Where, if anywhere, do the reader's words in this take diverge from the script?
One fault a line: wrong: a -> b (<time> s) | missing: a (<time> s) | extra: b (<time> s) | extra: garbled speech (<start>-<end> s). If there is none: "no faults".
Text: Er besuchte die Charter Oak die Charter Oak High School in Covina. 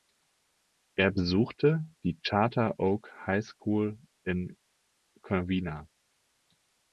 missing: die Charter Oak (3.1 s)